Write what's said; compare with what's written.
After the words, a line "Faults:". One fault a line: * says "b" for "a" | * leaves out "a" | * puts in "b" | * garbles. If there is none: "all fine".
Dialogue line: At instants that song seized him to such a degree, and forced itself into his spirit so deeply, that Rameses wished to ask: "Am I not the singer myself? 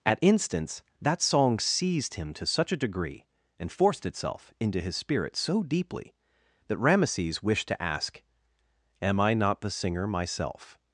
At instants that song seized him to such a degree, and forced itself into his spirit so deeply, that Rameses wished to ask: "Am I not the singer myself?
Faults:
all fine